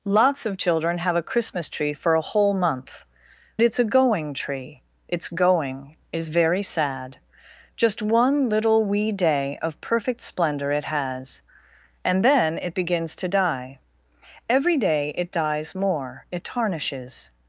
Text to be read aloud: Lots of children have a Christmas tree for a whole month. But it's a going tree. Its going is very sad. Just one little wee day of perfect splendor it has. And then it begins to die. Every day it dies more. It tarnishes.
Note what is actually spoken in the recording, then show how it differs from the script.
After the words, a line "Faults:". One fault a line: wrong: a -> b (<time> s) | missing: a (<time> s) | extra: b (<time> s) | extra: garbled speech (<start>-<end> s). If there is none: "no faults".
Lots of children have a Christmas tree for a whole month. It's a going tree. Its going is very sad. Just one little wee day of perfect splendor it has. And then it begins to die. Every day it dies more. It tarnishes.
Faults:
missing: But (3.0 s)